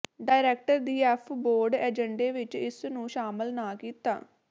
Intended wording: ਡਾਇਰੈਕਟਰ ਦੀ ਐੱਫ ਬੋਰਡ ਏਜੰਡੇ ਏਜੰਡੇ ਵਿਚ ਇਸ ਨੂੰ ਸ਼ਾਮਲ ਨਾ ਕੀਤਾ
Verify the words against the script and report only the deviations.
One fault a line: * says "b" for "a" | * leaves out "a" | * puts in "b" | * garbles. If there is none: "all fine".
* leaves out "ਏਜੰਡੇ"